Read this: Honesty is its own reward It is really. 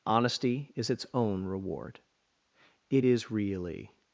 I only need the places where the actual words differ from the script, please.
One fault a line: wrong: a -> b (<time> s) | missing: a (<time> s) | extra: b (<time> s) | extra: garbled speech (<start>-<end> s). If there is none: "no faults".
no faults